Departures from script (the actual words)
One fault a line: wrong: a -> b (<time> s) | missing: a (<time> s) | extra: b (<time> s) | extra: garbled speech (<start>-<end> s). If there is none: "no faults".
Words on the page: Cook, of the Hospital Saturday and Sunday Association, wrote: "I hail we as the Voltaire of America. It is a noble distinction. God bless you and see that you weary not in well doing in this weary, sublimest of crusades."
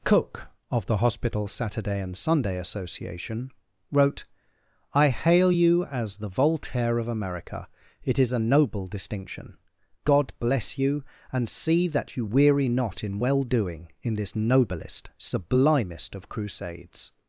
wrong: we -> you (5.5 s)
wrong: weary -> noblest (14.3 s)